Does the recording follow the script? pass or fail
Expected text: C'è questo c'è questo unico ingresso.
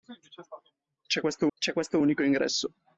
pass